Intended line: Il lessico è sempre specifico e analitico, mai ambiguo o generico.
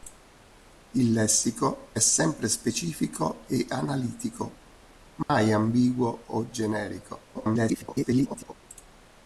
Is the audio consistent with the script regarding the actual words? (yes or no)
no